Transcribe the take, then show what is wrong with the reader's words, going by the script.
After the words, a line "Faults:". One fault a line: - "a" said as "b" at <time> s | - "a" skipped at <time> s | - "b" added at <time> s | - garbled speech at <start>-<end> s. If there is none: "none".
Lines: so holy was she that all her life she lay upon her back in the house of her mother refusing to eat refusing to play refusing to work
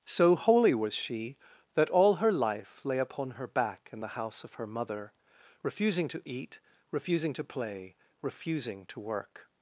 so holy was she that all her life lay upon her back in the house of her mother refusing to eat refusing to play refusing to work
Faults:
- "she" skipped at 2.8 s